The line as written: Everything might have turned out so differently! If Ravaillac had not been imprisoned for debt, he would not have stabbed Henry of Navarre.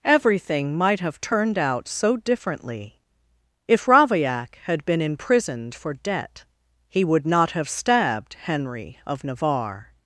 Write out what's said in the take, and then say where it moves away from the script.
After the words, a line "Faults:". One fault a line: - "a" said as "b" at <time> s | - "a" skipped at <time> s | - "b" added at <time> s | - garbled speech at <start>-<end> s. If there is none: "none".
Everything might have turned out so differently! If Ravaillac had been imprisoned for debt, he would not have stabbed Henry of Navarre.
Faults:
- "not" skipped at 4.8 s